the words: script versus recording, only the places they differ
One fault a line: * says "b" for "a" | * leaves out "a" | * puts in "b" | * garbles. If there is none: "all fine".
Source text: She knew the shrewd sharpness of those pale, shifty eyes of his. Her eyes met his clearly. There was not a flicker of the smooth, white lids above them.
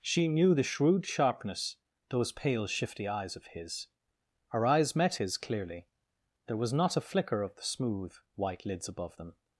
* leaves out "of"